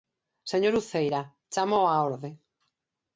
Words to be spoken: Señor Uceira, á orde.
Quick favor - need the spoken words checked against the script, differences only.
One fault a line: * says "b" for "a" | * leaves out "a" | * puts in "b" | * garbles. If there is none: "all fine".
* puts in "chámoo"